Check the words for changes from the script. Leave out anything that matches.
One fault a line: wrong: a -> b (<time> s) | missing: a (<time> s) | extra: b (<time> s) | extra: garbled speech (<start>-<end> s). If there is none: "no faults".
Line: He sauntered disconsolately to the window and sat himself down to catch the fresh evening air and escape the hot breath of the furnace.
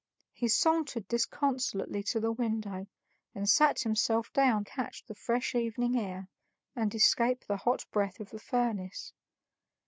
missing: to (4.7 s)